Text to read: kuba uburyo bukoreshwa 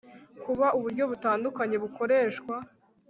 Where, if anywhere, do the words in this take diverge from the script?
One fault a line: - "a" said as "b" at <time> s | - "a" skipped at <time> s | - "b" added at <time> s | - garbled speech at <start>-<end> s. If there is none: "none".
- "butandukanye" added at 1.1 s